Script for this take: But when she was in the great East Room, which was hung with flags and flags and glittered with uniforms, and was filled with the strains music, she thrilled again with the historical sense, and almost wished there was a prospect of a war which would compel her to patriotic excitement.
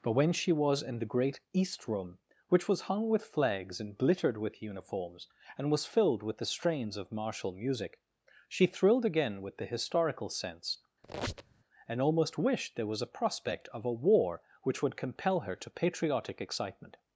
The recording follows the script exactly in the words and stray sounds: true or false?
false